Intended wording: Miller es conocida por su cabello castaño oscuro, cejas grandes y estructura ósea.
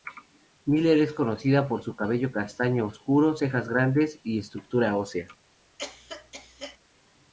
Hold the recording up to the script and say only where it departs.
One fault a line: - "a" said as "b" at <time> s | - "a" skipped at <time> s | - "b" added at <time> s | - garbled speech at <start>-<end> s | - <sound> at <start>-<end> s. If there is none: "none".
- cough at 5.8-6.8 s